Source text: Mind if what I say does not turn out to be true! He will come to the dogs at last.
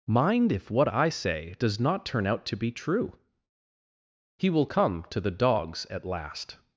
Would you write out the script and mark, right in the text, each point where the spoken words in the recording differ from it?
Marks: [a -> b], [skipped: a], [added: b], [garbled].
Mind if what I say does not turn out to be true! He will come to the dogs at last.